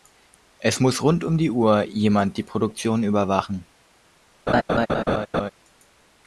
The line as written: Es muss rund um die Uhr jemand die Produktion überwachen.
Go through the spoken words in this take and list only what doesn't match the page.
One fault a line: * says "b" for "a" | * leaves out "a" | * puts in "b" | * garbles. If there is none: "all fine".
all fine